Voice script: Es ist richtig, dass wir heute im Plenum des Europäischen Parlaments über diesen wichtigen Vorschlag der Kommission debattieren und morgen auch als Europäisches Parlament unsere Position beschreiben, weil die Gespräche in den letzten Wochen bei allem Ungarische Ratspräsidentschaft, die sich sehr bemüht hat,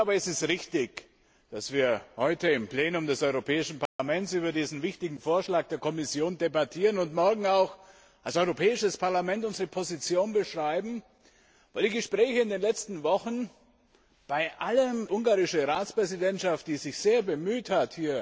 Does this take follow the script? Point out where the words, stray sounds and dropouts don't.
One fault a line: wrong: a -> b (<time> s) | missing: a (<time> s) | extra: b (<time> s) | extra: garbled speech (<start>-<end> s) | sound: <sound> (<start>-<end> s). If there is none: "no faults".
sound: dropout (3.9-4.0 s)